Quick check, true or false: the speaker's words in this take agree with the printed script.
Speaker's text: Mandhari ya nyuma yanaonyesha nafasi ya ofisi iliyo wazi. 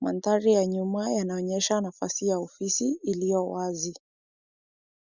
true